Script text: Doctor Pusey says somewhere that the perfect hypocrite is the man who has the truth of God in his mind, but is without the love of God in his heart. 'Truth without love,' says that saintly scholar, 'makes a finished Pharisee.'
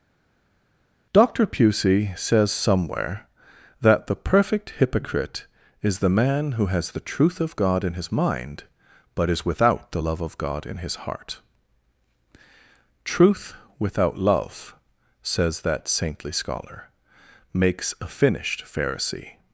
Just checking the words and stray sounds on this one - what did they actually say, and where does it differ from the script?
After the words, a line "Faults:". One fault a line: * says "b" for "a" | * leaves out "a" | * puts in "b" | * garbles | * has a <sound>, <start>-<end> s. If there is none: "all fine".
Doctor Pusey says somewhere that the perfect hypocrite is the man who has the truth of God in his mind, but is without the love of God in his heart. 'Truth without love,' says that saintly scholar, 'makes a finished Pharisee.'
Faults:
all fine